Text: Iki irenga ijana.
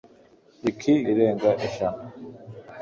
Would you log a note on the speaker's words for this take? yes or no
no